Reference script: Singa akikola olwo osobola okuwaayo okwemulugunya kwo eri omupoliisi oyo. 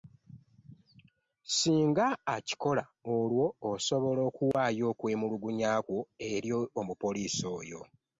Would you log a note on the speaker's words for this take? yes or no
no